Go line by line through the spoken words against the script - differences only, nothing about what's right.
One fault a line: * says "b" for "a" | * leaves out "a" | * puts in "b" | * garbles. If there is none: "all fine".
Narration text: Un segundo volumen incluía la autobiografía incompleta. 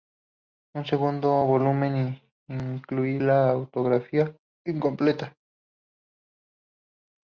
all fine